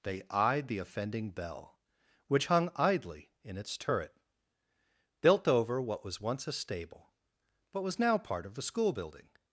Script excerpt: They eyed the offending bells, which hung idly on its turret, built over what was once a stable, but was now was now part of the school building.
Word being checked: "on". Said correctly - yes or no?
no